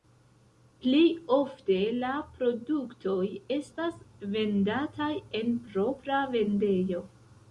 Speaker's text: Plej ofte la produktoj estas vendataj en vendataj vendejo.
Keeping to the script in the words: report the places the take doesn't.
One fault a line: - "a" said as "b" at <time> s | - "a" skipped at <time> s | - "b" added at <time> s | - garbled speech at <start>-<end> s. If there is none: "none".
- "vendataj" said as "propra" at 5.7 s